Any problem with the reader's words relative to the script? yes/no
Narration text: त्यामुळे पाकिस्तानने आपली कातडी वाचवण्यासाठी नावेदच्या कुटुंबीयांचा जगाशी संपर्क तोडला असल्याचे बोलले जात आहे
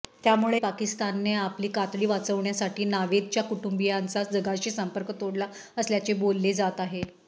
no